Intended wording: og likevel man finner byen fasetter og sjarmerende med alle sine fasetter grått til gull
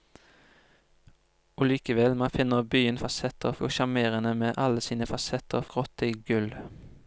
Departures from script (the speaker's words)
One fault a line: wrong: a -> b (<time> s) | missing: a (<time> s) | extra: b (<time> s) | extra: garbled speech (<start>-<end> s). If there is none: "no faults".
no faults